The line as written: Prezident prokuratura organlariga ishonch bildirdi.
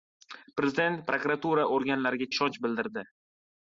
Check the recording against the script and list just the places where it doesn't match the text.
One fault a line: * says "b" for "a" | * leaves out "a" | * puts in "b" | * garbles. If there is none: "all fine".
all fine